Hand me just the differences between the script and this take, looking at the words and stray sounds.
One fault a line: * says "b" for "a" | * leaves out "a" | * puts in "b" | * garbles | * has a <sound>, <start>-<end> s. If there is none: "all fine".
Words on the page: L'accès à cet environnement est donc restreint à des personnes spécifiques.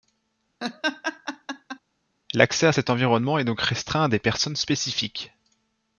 * has a laugh, 0.6-1.8 s